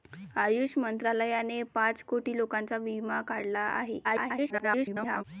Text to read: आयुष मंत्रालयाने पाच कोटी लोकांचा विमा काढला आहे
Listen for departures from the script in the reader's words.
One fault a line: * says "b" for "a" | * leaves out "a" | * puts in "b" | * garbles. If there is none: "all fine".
* garbles